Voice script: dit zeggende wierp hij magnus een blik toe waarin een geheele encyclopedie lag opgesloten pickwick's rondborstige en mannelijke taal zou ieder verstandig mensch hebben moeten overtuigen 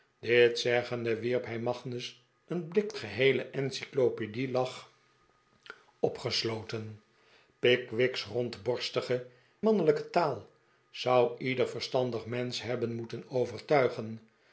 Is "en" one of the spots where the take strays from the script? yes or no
yes